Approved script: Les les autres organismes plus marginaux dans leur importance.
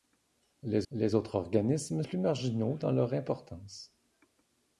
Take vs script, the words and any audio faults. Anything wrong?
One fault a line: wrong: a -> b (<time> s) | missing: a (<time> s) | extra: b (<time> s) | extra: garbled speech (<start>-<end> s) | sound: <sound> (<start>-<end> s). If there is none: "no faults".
no faults